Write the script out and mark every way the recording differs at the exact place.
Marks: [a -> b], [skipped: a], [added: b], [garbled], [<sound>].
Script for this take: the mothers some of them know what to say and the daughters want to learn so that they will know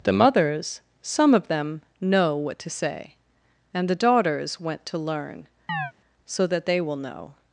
the mothers some of them know what to say and the daughters [want -> went] to learn [chirp] so that they will know